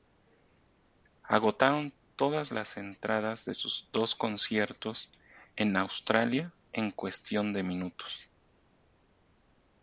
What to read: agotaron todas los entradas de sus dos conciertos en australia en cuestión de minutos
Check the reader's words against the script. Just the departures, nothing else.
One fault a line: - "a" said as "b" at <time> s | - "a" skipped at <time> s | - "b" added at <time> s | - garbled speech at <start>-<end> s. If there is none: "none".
- "los" said as "las" at 2.5 s